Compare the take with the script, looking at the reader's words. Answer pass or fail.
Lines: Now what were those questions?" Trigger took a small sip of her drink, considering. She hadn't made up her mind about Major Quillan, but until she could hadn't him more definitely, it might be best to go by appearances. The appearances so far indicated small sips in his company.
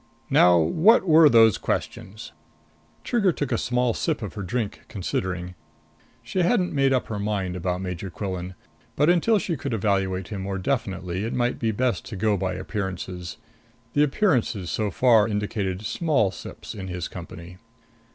fail